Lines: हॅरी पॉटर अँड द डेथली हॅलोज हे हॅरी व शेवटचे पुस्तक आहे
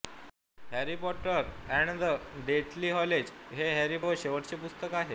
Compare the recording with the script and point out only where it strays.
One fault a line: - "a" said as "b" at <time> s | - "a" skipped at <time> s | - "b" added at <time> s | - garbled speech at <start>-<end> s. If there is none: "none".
none